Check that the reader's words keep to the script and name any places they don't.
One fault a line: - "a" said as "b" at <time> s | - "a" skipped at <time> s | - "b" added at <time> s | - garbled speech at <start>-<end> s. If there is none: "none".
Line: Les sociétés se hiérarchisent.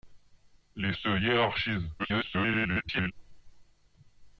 - "sociétés" skipped at 0.9 s
- garbled speech at 2.0-3.1 s